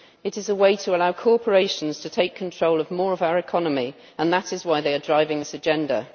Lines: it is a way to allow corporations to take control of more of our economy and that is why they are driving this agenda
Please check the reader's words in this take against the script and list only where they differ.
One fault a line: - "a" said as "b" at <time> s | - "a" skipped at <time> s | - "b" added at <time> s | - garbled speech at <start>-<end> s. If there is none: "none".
none